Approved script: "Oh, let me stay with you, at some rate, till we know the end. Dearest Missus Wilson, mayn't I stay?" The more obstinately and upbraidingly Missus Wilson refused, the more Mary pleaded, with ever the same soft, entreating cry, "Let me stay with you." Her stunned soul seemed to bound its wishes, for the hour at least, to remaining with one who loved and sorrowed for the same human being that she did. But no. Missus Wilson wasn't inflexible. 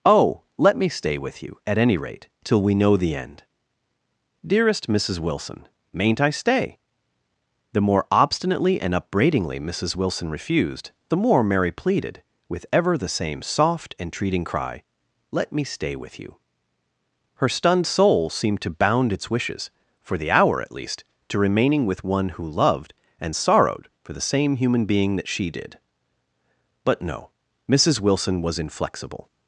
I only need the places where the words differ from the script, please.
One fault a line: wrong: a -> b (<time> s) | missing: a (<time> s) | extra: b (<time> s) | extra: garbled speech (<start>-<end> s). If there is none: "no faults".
wrong: some -> any (1.8 s)
wrong: wasn't -> was (28.4 s)